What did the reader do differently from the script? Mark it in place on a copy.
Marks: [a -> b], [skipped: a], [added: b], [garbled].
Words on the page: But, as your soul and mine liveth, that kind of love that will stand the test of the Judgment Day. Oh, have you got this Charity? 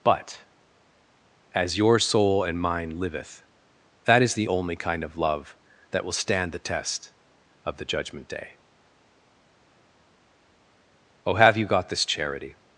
But, as your soul and mine liveth, that [added: is the only] kind of love that will stand the test of the Judgment Day. Oh, have you got this Charity?